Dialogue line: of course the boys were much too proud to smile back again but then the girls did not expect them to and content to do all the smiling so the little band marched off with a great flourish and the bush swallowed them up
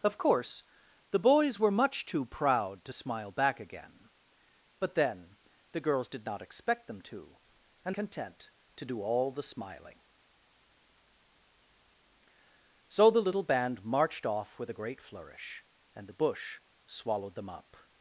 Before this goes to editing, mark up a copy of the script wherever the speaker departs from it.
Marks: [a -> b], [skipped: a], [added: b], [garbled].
of course the boys were much too proud to smile back again but then the girls did not expect them to and content to do all the smiling so the little band marched off with a great flourish and the bush swallowed them up